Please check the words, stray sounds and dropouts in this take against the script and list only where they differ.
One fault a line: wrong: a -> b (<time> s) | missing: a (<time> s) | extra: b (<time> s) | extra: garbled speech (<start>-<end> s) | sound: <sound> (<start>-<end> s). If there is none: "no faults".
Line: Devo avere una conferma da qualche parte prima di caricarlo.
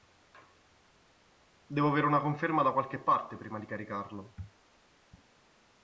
no faults